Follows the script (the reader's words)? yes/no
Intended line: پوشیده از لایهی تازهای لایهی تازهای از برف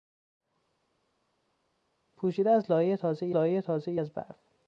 yes